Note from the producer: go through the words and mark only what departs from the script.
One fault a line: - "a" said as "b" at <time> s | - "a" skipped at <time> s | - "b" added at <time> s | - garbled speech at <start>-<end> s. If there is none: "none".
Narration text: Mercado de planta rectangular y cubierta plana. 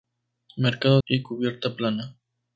- "de planta rectangular" skipped at 1.0 s